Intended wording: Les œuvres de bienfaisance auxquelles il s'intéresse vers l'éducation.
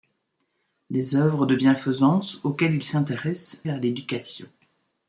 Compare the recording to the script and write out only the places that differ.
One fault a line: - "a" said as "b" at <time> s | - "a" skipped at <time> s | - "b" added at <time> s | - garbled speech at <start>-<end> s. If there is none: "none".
none